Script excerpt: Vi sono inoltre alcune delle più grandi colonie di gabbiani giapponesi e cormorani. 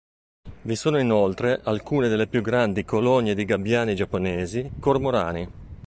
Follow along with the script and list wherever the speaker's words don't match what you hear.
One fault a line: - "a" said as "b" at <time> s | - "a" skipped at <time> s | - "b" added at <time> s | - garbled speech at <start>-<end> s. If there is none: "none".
- "e" skipped at 4.7 s